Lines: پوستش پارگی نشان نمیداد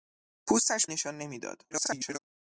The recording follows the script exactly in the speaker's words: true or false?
false